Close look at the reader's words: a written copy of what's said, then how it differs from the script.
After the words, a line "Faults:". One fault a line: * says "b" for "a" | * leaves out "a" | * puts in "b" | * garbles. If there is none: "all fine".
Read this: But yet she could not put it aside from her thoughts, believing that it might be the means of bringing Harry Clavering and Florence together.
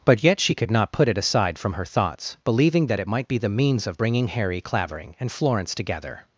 But yet she could not put it aside from her thoughts, believing that it might be the means of bringing Harry Clavering and Florence together.
Faults:
all fine